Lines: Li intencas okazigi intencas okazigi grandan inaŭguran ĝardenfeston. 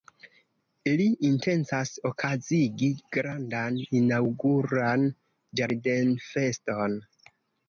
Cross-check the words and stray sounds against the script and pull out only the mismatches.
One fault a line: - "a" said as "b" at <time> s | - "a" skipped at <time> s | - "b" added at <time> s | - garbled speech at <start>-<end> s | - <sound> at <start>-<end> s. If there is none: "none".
- "intencas okazigi" skipped at 2.9 s